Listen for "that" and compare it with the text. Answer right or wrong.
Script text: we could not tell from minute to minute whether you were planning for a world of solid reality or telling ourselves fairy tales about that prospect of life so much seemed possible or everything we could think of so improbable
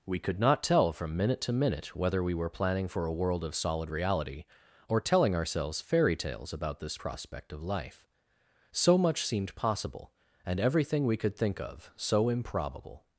wrong